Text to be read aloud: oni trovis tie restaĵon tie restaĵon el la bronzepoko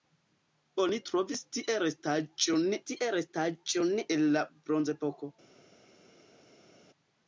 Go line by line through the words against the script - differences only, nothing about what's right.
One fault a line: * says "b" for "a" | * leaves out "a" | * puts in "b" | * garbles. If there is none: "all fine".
all fine